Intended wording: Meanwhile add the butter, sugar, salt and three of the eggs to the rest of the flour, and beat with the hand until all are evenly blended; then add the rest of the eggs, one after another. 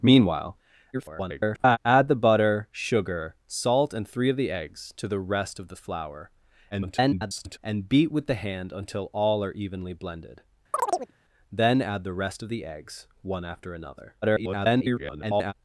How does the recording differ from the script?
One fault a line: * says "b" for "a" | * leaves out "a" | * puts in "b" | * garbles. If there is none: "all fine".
* garbles
* garbles
* garbles